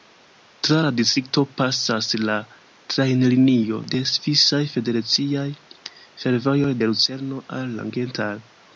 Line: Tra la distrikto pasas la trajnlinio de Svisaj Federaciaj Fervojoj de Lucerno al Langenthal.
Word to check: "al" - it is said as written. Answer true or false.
true